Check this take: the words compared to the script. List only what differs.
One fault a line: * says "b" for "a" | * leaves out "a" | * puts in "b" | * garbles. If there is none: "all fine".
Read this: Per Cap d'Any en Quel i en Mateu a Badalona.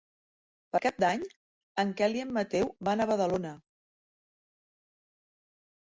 * puts in "van"